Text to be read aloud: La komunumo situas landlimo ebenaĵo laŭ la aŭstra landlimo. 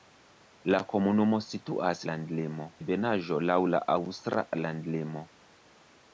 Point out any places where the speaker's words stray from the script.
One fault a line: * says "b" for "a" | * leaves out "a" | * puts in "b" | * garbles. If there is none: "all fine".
all fine